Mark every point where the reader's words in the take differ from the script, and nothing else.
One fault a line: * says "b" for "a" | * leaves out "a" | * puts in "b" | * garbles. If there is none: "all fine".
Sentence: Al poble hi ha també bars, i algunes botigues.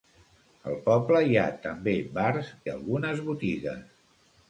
all fine